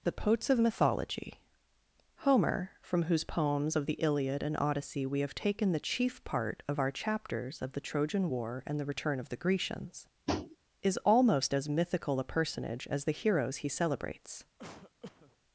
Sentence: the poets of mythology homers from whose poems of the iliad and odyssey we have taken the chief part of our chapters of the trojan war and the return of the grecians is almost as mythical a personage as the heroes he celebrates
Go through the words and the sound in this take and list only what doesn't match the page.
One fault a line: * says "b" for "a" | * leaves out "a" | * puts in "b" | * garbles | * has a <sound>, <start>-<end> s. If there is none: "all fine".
* says "homer" for "homers"
* has a tap, 10.3-10.6 s
* has a cough, 14.6-15.4 s